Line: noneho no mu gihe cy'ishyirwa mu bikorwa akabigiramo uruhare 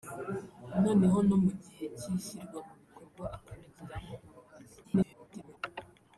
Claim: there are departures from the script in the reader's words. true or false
true